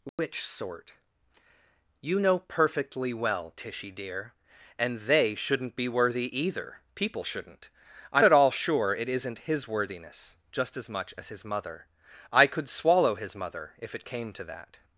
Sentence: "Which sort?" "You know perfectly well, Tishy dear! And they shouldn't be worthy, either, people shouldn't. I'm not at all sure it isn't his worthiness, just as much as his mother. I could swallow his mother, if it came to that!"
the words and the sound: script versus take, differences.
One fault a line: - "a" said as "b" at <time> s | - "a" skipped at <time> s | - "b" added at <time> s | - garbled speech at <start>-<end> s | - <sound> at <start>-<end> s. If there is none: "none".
- dropout at 0.1-0.2 s
- "not" skipped at 8.2 s